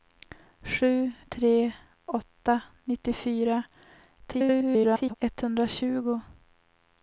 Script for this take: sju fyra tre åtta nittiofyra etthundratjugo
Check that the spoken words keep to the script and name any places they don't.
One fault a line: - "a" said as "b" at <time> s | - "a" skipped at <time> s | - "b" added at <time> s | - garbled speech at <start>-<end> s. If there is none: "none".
- "fyra" skipped at 1.1 s
- garbled speech at 4.2-5.1 s